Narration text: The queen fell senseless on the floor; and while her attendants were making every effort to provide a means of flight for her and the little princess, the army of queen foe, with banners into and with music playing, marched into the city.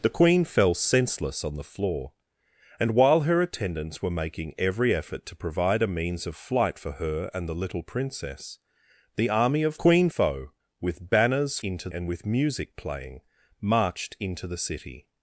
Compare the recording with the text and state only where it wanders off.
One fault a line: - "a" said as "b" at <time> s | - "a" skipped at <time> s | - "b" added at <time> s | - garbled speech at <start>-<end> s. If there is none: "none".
none